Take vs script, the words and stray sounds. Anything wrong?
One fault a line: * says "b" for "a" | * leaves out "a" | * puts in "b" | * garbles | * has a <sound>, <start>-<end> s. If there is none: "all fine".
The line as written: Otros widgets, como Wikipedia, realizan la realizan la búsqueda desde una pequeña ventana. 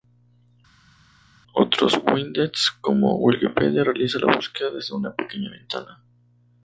* leaves out "realizan la"